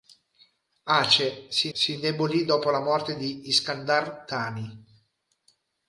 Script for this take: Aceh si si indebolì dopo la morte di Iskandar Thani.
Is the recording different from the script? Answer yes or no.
no